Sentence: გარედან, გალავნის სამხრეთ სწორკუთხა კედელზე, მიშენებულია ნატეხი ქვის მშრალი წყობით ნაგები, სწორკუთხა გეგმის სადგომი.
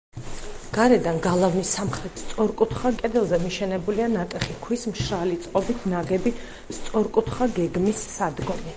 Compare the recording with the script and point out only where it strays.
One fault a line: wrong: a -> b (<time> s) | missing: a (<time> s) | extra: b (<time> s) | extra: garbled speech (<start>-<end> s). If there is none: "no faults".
no faults